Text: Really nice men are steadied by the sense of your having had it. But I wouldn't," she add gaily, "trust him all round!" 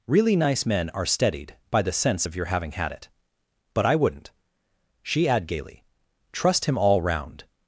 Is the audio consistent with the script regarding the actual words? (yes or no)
yes